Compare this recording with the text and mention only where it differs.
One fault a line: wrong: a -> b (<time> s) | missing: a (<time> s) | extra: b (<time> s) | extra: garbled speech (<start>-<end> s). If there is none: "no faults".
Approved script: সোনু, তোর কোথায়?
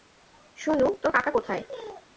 extra: কাকা (1.1 s)